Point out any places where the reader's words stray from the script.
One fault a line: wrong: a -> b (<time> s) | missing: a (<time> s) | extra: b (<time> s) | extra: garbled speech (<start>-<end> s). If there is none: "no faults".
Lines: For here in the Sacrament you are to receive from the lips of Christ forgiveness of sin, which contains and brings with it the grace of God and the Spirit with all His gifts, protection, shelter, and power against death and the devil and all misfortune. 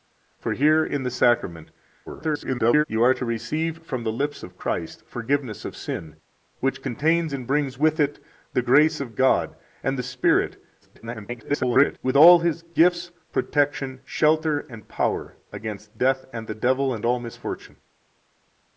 extra: garbled speech (2.1-2.8 s)
extra: garbled speech (10.8-12.0 s)